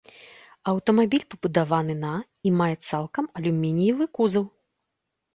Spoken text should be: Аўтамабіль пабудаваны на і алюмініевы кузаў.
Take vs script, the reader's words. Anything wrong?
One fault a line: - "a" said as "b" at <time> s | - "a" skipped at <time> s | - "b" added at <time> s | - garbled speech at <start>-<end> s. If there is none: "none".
- "мае цалкам" added at 2.6 s